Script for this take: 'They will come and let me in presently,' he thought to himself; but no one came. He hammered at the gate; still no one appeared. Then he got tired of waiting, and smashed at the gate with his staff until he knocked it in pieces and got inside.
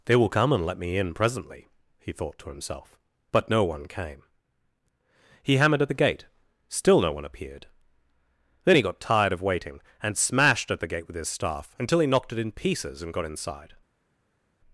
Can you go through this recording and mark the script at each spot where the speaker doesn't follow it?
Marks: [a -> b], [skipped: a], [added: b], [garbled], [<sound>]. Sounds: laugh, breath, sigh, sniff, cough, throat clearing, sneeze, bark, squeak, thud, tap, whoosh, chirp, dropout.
'They will come and let me in presently,' he thought to himself; but no one came. He hammered at the gate; still no one appeared. Then he got tired of waiting, and smashed at the gate with his staff until he knocked it in pieces and got inside.